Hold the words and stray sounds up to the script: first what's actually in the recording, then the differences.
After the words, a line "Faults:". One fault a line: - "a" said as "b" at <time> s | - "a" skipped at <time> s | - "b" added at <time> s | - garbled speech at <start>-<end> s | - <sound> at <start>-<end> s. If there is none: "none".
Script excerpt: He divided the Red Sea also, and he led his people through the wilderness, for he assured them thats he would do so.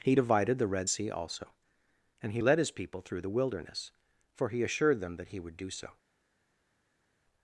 He divided the Red Sea also, and he led his people through the wilderness, for he assured them that he would do so.
Faults:
- "thats" said as "that" at 5.2 s